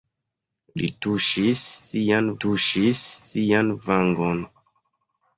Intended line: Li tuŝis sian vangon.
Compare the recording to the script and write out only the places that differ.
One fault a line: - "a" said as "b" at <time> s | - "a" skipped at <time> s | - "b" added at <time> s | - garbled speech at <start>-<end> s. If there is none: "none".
- "tuŝis sian" added at 2.4 s